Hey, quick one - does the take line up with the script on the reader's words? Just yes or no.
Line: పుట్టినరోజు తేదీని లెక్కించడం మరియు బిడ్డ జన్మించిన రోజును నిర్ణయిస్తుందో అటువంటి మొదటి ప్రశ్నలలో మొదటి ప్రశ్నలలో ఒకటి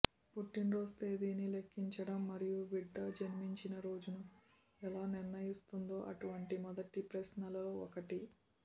no